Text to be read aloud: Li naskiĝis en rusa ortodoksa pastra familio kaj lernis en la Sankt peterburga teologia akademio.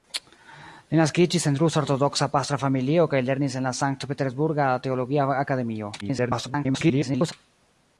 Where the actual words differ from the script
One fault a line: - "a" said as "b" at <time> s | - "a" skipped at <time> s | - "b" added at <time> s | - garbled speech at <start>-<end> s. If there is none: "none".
- garbled speech at 6.0-7.3 s